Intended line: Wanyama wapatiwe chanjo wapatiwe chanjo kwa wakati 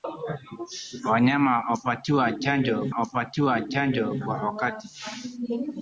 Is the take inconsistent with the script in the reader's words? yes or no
no